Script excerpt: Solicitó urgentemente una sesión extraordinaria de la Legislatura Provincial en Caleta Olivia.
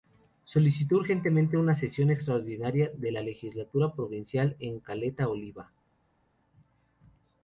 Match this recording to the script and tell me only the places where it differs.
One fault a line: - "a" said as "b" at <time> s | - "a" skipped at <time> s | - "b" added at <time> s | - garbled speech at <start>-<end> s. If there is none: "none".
none